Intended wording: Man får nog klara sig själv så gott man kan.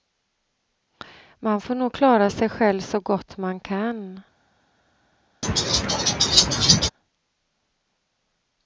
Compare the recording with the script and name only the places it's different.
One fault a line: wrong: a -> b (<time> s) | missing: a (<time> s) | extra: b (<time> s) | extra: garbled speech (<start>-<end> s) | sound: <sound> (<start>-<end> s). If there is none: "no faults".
sound: laugh (5.4-6.9 s)